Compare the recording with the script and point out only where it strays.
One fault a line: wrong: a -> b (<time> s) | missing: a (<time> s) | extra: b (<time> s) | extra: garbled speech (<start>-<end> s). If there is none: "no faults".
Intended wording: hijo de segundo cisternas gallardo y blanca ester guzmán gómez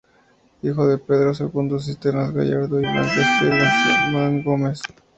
extra: pedro (1.0 s)